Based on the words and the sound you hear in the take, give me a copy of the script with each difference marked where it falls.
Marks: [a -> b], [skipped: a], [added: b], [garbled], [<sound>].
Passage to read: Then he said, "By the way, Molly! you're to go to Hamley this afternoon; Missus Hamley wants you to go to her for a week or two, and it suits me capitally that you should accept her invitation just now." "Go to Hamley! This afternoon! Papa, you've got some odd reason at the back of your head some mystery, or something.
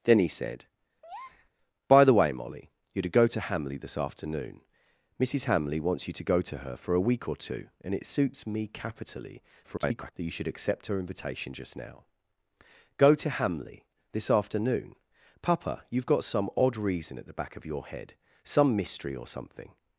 Then he said, [breath] "By the way, Molly! you're to go to Hamley this afternoon; Missus Hamley wants you to go to her for a week or two, and it suits me capitally [garbled] that you should accept her invitation just now." "Go to Hamley! This afternoon! Papa, you've got some odd reason at the back of your head some mystery, or something.